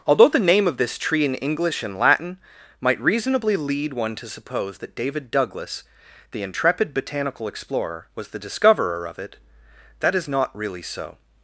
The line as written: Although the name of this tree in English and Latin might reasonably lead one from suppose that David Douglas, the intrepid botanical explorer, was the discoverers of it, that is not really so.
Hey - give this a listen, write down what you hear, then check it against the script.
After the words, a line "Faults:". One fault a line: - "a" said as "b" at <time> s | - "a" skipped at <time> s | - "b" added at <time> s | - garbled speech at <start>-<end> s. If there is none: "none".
Although the name of this tree in English and Latin might reasonably lead one to suppose that David Douglas, the intrepid botanical explorer, was the discoverer of it, that is not really so.
Faults:
- "from" said as "to" at 4.2 s
- "discoverers" said as "discoverer" at 8.4 s